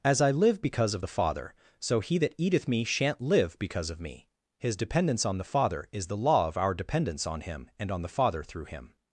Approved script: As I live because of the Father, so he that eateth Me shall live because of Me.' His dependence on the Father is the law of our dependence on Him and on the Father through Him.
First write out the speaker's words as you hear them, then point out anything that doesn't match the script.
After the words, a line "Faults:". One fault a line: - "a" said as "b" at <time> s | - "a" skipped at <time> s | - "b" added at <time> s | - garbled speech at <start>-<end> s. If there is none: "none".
As I live because of the Father, so he that eateth Me shan't live because of Me.' His dependence on the Father is the law of our dependence on Him and on the Father through Him.
Faults:
- "shall" said as "shan't" at 2.8 s